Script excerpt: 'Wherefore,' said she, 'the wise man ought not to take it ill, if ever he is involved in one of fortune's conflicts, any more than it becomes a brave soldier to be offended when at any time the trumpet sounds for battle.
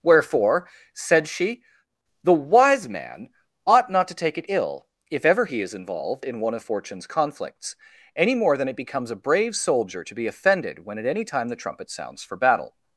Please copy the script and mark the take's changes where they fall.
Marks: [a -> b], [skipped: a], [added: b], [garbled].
'Wherefore,' said she, 'the wise man ought not to take it ill, if ever he is involved in one of fortune's conflicts, any more than it becomes a brave soldier to be offended when at any time the trumpet sounds for battle.